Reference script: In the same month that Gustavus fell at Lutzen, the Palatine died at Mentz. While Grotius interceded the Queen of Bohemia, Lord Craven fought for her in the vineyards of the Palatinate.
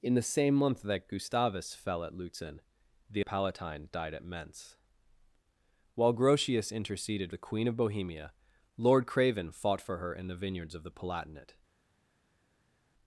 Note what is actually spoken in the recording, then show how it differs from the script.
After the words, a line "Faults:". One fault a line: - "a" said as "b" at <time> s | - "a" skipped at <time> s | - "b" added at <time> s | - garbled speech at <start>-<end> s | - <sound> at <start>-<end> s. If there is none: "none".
In the same month that Gustavus fell at Lutzen, the Palatine died at Mentz. While Grotius interceded the Queen of Bohemia, Lord Craven fought for her in the vineyards of the Palatinate.
Faults:
none